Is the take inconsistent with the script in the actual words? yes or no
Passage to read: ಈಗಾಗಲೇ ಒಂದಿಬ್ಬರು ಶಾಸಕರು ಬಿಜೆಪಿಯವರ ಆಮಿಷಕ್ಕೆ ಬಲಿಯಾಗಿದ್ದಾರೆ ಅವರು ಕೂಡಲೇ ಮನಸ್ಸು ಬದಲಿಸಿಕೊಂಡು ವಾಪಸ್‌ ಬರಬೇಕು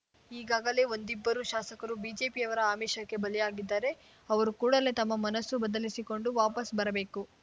yes